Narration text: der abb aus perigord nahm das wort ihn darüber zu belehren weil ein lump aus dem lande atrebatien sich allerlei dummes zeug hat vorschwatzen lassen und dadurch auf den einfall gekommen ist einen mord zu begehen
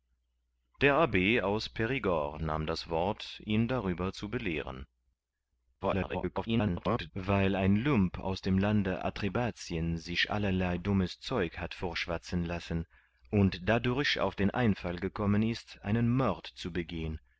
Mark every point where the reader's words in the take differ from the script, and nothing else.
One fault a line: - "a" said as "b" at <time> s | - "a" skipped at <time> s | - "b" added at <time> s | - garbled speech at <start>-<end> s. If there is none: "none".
- garbled speech at 5.8-7.1 s